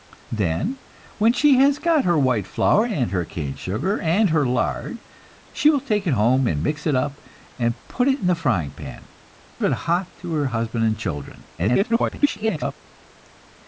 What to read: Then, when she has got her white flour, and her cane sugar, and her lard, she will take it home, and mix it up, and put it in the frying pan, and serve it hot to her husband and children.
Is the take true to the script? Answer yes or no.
no